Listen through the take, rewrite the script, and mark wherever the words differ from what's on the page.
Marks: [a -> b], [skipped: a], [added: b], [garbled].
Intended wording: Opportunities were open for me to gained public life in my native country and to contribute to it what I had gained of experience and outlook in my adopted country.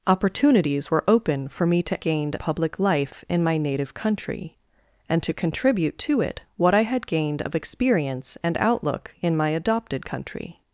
Opportunities were open for me to gained public life in my native country and to contribute to it what I had gained of experience and outlook in my adopted country.